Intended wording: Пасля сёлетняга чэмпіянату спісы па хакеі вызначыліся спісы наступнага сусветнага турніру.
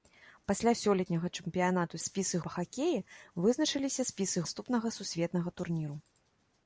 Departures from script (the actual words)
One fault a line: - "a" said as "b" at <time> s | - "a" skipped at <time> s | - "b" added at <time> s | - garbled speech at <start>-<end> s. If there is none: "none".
none